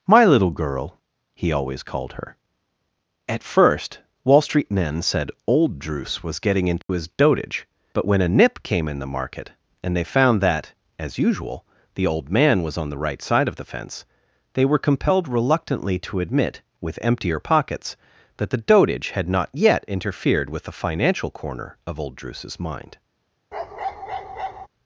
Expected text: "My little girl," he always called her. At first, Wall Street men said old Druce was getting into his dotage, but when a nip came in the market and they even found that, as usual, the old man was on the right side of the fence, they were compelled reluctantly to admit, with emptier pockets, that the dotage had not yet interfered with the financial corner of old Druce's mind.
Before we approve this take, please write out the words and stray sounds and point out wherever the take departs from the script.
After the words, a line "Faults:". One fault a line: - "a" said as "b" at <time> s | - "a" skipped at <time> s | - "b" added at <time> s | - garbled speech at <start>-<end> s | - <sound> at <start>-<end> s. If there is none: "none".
"My little girl," he always called her. At first, Wall Street men said old Druce was getting into his dotage, but when a nip came in the market and they found that, as usual, the old man was on the right side of the fence, they were compelled reluctantly to admit, with emptier pockets, that the dotage had not yet interfered with the financial corner of old Druce's mind.
Faults:
- dropout at 6.8-6.9 s
- "even" skipped at 10.0 s
- bark at 23.5-24.7 s